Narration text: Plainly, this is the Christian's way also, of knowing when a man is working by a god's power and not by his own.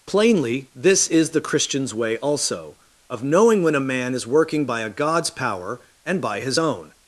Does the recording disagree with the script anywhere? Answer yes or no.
yes